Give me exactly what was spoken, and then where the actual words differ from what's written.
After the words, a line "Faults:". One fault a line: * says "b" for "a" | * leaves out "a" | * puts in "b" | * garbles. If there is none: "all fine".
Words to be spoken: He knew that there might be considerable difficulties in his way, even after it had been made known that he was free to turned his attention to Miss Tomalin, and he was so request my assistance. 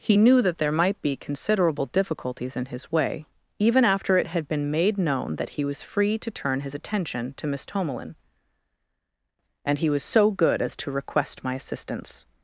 He knew that there might be considerable difficulties in his way, even after it had been made known that he was free to turn his attention to Miss Tomalin, and he was so good as to request my assistance.
Faults:
* says "turn" for "turned"
* puts in "good as to"